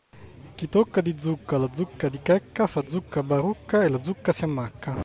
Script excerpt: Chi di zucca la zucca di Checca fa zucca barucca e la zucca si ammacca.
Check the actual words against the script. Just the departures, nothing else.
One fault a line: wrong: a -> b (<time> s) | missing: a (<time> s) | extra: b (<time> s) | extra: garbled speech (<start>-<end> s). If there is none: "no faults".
extra: tocca (0.7 s)